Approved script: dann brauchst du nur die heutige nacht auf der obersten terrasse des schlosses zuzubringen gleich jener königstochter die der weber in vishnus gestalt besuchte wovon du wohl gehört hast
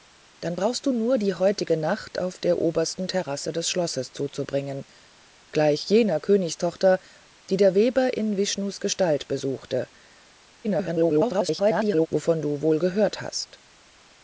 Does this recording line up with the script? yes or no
no